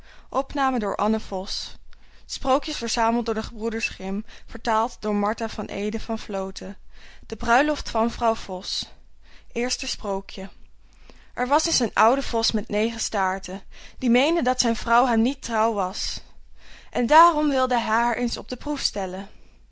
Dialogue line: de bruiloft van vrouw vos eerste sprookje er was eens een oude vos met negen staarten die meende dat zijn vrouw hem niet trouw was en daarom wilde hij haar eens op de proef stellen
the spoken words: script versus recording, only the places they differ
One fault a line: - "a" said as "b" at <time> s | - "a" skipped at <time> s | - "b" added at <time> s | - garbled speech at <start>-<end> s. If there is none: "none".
none